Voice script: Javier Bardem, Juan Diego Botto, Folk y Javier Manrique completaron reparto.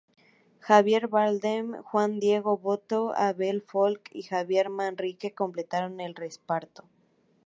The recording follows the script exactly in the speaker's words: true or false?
false